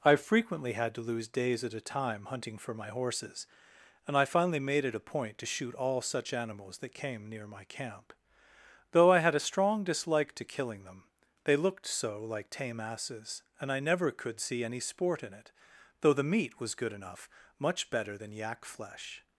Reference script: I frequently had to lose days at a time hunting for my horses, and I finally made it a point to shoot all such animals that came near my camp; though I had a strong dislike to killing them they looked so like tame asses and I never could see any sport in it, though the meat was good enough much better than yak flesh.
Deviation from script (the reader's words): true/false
false